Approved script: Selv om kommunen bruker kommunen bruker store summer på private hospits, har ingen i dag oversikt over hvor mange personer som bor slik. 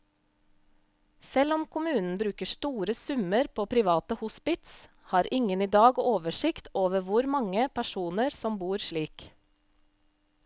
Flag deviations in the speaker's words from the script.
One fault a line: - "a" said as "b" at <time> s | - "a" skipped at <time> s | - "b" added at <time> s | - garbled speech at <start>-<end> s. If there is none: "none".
- "kommunen bruker" skipped at 2.5 s